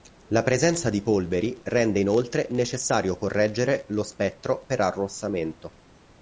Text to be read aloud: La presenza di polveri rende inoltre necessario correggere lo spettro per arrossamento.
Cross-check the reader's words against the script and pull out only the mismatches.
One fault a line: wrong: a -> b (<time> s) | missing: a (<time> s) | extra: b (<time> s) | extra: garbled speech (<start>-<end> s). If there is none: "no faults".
no faults